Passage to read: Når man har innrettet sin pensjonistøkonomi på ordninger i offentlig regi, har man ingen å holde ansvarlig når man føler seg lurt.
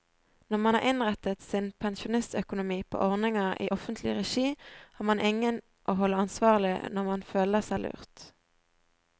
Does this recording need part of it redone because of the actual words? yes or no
no